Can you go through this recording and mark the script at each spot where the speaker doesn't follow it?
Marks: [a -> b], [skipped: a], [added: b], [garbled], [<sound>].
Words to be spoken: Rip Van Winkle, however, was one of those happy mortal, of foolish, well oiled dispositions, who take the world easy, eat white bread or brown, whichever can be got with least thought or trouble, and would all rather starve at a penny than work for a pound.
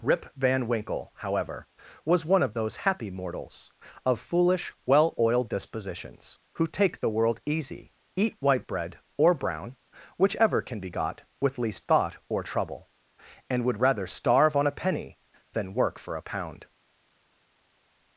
Rip Van Winkle, however, was one of those happy [mortal, -> mortals] of foolish, well oiled dispositions, who take the world easy, eat white bread or brown, whichever can be got with least thought or trouble, and would [skipped: all] rather starve [at -> on] a penny than work for a pound.